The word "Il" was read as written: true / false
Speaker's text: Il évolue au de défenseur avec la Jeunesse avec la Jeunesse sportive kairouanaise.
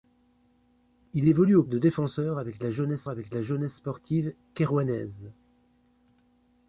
true